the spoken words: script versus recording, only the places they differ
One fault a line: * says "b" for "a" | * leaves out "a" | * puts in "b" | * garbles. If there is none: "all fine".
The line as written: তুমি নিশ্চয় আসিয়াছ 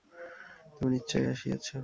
all fine